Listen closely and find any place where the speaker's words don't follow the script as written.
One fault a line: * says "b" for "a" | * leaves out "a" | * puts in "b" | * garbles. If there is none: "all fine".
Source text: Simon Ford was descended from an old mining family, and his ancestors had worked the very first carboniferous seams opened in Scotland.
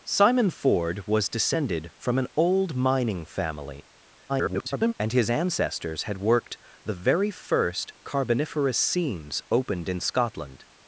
* garbles